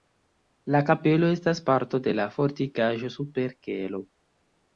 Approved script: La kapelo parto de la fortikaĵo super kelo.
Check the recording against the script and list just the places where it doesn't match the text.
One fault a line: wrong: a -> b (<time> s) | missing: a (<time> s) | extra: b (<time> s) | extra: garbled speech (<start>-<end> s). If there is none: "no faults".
extra: estas (1.3 s)